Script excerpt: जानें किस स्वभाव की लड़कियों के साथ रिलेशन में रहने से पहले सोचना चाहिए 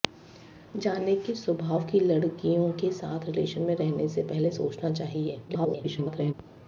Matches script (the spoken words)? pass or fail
fail